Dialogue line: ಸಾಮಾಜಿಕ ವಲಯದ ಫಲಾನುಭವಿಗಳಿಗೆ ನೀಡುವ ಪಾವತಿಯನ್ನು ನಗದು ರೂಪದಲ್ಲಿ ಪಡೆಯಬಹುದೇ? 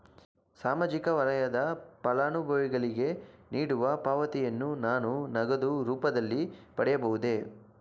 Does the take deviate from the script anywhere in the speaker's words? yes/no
yes